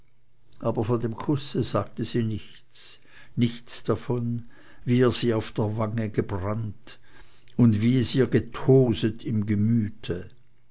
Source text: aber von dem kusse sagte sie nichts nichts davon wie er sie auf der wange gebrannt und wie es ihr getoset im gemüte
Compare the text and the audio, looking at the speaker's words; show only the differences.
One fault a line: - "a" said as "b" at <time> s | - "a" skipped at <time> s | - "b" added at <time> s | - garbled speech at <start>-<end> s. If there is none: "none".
none